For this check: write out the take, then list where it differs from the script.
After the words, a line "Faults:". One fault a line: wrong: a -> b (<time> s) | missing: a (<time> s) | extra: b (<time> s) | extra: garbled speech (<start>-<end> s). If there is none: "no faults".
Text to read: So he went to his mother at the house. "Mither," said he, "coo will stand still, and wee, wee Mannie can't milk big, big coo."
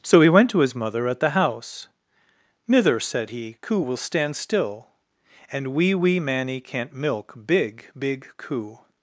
So he went to his mother at the house. "Mither," said he, "coo will stand still, and wee, wee Mannie can't milk big, big coo."
Faults:
no faults